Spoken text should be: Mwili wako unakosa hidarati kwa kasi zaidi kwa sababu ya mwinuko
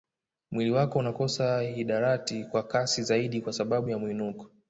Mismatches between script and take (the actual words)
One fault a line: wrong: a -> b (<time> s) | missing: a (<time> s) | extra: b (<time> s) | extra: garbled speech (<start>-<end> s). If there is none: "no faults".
no faults